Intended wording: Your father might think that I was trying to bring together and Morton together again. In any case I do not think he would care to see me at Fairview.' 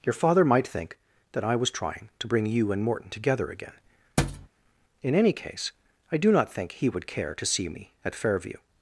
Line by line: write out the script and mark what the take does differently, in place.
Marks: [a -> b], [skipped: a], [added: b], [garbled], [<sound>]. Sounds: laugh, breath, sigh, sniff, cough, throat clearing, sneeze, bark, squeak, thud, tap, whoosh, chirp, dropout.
Your father might think that I was trying to bring [together -> you] and Morton together again. [thud] In any case I do not think he would care to see me at Fairview.'